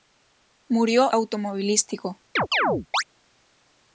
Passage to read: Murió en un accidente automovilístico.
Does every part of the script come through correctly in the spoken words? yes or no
no